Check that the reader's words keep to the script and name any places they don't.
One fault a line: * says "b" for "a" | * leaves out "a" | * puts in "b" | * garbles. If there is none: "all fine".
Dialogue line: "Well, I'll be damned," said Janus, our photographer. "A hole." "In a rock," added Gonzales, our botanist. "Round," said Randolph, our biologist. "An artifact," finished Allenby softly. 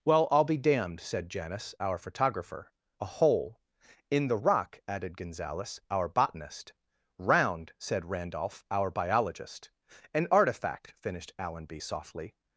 * says "the" for "a"